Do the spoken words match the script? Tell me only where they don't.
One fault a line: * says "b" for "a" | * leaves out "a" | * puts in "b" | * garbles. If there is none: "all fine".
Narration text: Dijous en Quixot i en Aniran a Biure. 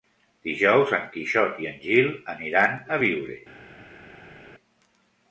* puts in "Gil"